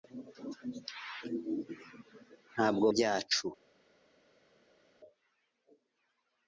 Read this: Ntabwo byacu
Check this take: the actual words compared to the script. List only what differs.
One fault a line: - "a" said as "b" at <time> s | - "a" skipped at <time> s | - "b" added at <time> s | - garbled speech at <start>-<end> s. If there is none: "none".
none